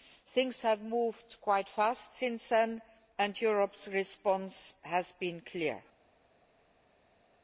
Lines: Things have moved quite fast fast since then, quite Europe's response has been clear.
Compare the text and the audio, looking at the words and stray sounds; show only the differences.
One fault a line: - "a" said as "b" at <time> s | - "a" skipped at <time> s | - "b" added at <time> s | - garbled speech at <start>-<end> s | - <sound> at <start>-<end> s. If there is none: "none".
- "fast" skipped at 2.1 s
- "quite" said as "and" at 3.2 s